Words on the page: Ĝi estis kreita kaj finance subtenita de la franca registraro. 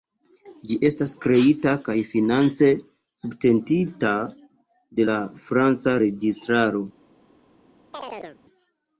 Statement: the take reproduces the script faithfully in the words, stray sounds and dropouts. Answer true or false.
false